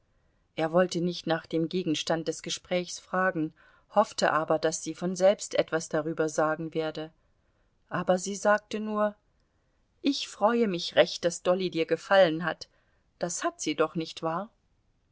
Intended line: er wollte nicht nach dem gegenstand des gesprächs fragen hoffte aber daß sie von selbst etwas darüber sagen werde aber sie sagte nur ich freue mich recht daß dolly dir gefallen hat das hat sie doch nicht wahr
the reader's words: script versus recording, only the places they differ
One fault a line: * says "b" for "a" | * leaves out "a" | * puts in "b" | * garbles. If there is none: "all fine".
all fine